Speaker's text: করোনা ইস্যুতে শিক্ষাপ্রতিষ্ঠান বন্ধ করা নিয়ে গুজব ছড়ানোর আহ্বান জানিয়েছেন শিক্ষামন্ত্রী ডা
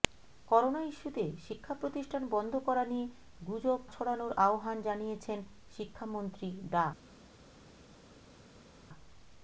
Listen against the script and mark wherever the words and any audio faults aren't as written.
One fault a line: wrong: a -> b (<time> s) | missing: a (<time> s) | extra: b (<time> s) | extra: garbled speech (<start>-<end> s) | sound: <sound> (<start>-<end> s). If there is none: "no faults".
no faults